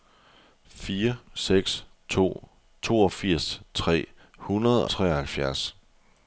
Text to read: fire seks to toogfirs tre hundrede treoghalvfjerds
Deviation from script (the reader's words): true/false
false